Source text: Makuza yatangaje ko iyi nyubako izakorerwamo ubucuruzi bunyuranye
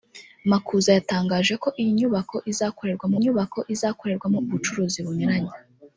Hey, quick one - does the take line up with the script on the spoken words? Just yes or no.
no